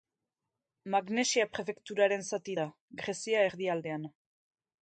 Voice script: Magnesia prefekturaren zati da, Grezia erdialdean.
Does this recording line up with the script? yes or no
yes